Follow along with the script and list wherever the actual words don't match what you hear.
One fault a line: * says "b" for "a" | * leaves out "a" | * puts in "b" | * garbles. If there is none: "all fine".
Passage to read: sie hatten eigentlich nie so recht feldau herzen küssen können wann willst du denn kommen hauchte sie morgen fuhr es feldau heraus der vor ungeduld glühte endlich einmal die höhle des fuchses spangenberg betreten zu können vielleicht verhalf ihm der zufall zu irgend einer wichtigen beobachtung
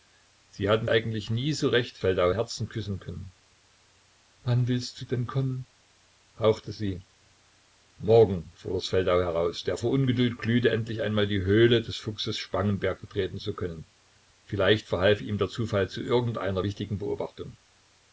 all fine